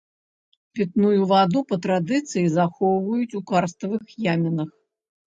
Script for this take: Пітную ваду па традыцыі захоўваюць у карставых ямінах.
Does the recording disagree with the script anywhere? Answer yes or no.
no